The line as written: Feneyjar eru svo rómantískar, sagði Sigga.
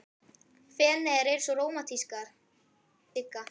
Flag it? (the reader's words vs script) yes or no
yes